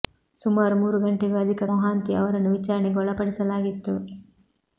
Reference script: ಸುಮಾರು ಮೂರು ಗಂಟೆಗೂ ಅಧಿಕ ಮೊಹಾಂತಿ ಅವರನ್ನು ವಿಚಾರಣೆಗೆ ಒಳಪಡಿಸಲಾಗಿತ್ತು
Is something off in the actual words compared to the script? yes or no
no